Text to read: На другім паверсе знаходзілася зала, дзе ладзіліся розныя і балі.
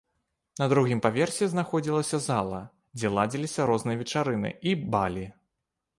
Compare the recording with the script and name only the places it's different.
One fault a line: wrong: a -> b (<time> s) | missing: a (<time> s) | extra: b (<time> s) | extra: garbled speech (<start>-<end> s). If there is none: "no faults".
extra: вечарыны (4.0 s)